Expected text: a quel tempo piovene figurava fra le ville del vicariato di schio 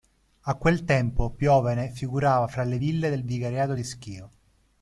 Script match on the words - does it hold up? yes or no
yes